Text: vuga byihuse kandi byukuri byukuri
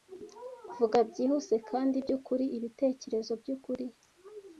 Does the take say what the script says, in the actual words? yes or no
no